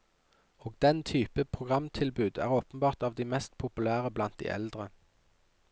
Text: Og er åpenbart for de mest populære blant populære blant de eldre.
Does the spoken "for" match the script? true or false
false